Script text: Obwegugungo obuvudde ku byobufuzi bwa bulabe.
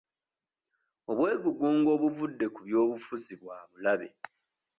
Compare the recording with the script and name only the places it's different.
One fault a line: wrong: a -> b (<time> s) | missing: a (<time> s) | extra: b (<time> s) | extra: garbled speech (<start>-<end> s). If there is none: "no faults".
no faults